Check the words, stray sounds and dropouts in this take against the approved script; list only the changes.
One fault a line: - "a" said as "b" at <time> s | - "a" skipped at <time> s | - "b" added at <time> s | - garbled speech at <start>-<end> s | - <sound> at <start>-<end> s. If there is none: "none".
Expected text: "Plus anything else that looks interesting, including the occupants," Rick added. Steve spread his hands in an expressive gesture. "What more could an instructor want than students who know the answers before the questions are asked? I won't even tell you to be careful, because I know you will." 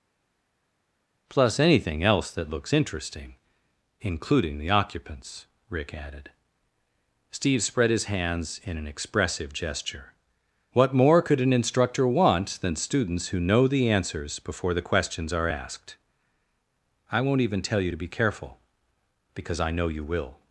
none